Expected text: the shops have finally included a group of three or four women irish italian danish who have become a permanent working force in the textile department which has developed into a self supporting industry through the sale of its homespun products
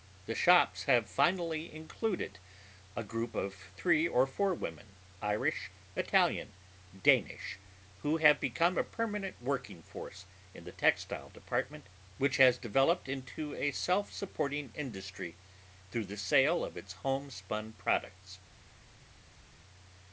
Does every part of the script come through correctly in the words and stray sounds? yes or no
yes